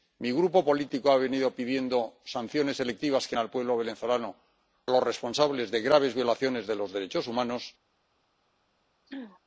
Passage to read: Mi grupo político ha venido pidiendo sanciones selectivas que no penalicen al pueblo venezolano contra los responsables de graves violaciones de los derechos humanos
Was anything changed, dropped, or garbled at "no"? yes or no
yes